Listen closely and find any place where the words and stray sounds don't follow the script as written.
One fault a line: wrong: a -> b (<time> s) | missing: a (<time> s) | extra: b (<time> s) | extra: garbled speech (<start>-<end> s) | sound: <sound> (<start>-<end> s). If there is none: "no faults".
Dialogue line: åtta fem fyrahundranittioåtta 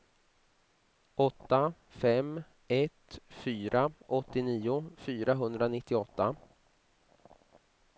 extra: ett fyra åttionio (2.7 s)